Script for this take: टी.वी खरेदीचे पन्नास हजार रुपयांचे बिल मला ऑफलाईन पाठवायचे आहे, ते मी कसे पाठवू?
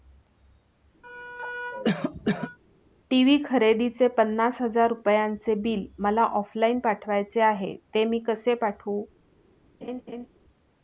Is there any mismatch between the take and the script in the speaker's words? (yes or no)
no